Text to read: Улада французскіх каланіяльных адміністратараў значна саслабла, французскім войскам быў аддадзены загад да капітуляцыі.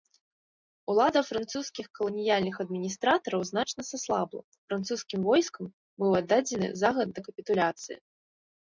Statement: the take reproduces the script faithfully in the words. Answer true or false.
true